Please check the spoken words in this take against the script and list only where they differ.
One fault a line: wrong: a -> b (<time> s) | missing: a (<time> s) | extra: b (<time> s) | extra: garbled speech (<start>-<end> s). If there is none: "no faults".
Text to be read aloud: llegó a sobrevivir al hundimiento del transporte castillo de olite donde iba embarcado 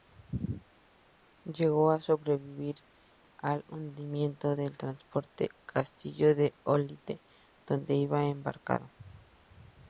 no faults